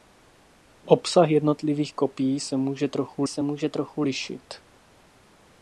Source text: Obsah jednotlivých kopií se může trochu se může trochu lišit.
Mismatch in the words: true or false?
false